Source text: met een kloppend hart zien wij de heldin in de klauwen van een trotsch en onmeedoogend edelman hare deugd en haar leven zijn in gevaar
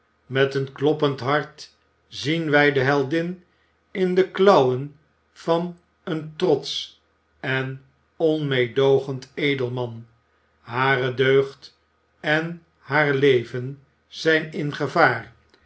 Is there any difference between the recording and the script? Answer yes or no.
no